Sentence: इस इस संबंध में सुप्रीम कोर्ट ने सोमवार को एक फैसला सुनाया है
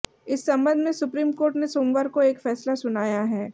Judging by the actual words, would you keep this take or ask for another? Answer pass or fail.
fail